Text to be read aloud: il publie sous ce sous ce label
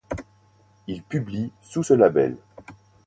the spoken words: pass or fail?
fail